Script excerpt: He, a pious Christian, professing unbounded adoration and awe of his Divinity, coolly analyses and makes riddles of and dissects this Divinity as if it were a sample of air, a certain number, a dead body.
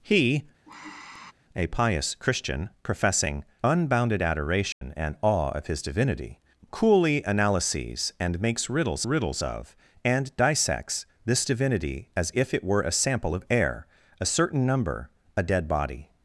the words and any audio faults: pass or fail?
fail